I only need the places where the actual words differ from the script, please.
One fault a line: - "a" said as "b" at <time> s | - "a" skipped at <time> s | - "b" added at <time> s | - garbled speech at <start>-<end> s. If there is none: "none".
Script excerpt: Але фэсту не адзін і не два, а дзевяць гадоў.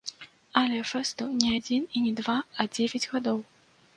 none